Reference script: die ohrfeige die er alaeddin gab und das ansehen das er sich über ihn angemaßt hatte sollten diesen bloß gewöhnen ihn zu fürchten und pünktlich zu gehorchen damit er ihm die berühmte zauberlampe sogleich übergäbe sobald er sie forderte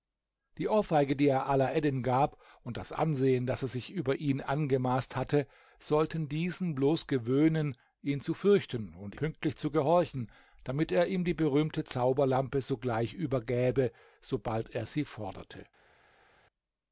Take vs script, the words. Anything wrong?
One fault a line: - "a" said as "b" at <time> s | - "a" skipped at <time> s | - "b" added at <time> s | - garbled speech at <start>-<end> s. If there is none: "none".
none